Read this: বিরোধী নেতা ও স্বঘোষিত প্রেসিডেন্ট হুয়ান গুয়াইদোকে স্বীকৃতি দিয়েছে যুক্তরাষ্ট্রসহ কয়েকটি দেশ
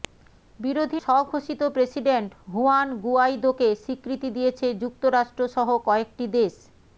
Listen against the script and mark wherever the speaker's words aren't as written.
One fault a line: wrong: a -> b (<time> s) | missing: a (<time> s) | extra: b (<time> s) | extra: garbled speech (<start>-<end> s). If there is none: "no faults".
missing: নেতা ও (1.0 s)